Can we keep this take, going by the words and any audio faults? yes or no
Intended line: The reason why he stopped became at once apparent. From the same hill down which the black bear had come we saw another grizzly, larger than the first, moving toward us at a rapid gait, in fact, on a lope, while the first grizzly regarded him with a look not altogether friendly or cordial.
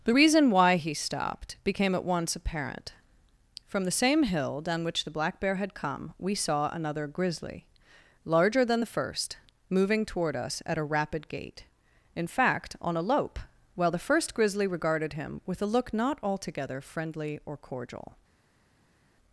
yes